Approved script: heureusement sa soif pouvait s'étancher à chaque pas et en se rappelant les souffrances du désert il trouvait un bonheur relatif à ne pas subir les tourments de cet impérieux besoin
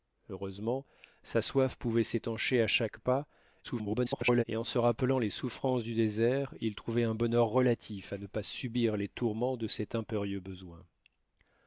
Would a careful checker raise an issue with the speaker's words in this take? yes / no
yes